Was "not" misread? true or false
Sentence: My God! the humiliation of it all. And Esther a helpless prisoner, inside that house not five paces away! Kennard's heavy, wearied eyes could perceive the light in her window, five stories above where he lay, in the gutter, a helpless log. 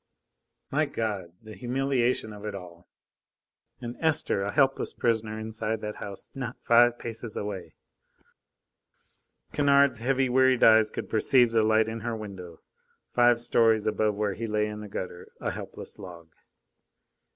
false